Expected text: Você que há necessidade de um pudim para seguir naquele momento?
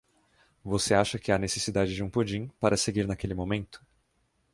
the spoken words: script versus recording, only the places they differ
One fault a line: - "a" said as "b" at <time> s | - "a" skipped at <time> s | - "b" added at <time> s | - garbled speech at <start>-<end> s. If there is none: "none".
- "acha" added at 0.9 s